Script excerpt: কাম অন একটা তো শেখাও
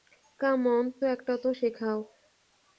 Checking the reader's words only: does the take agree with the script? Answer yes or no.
yes